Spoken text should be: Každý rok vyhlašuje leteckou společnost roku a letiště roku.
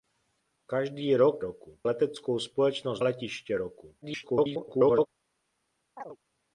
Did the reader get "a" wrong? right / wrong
wrong